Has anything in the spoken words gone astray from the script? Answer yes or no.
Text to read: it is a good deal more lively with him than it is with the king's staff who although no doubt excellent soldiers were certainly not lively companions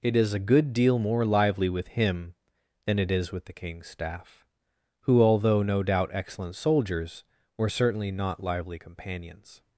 no